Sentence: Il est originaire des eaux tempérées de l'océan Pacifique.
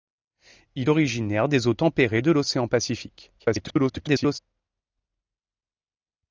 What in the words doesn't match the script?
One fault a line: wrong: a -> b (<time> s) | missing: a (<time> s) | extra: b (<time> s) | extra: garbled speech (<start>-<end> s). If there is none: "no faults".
missing: est (0.9 s)
extra: garbled speech (3.4-4.4 s)